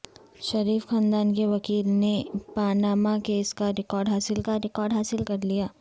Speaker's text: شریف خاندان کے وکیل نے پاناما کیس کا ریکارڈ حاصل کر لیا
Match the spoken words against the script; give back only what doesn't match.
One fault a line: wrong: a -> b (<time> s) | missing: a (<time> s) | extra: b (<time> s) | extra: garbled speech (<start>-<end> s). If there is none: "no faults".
extra: کا ریکارڈ حاصل (4.4 s)